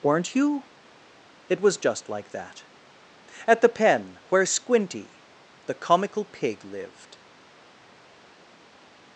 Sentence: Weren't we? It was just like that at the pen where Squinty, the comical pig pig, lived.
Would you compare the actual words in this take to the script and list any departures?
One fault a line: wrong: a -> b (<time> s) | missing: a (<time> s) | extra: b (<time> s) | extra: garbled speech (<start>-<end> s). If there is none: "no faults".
wrong: we -> you (0.3 s)
missing: pig (6.7 s)